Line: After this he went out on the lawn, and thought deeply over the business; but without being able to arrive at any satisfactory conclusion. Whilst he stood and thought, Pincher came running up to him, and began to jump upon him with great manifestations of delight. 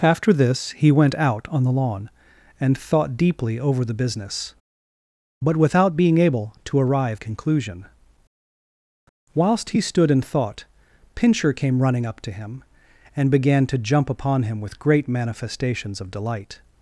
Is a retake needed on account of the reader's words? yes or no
yes